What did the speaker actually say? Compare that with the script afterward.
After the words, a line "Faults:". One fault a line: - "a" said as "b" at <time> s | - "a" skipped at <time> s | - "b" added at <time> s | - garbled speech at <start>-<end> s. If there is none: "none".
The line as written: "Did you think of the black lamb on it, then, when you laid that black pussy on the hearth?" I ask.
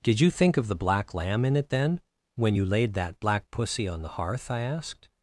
"Did you think of the black lamb in it, then, when you laid that black pussy on the hearth?" I asked.
Faults:
- "on" said as "in" at 1.4 s
- "ask" said as "asked" at 4.6 s